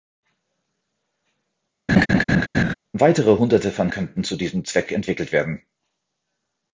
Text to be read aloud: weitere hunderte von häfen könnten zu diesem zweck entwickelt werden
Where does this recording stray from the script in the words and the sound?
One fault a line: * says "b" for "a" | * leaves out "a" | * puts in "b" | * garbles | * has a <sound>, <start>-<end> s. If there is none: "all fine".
* has a laugh, 1.9-2.7 s
* leaves out "häfen"